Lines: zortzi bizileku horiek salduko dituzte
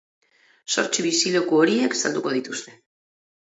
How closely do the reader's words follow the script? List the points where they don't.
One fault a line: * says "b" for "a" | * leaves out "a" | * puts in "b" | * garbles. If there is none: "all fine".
all fine